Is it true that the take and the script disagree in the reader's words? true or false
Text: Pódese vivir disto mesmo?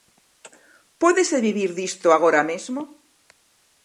true